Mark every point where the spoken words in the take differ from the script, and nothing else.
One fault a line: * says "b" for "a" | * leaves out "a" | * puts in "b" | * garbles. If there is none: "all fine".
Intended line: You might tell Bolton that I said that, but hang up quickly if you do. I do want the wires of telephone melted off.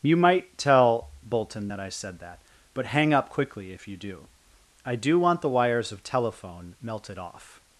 all fine